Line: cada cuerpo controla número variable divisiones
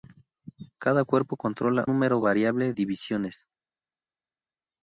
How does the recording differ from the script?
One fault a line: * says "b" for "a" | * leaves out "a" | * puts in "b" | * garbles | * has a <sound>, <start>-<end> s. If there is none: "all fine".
all fine